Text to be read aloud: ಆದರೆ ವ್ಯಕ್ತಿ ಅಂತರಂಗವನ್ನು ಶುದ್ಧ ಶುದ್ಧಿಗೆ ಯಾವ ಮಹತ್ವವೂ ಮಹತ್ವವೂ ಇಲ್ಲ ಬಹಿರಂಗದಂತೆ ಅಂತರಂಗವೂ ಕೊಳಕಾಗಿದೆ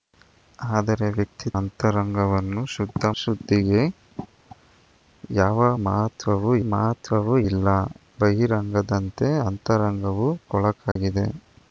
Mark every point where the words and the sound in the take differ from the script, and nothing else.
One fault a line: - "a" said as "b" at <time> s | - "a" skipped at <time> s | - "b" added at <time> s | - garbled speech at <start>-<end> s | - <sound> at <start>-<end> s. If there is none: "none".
- dropout at 10.9-11.0 s